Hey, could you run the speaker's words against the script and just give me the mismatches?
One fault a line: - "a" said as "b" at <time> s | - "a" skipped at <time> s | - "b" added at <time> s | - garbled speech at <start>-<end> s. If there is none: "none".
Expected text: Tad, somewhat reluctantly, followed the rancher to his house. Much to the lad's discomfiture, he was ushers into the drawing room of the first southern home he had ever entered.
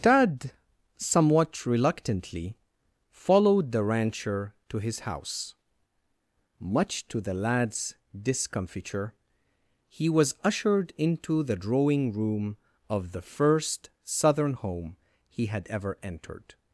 - "ushers" said as "ushered" at 10.4 s